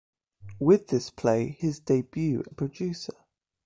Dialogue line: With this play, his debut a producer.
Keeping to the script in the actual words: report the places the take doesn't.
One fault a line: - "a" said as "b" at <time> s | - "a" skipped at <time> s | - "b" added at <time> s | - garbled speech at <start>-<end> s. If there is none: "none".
none